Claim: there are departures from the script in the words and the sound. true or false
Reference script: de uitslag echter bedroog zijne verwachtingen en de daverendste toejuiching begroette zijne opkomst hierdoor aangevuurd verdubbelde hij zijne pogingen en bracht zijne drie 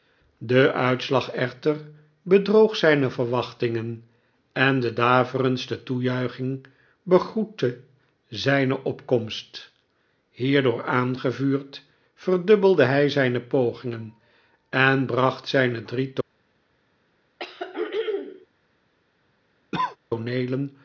true